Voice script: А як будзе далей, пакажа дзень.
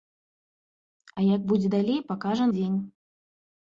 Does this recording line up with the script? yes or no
yes